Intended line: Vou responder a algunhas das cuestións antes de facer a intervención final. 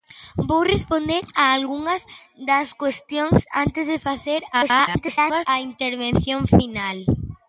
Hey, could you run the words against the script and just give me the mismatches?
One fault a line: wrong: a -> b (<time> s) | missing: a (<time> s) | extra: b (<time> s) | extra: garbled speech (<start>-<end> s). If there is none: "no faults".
extra: garbled speech (4.5-5.5 s)